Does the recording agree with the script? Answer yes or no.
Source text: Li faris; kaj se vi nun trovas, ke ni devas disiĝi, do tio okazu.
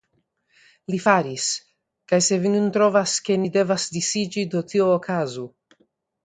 yes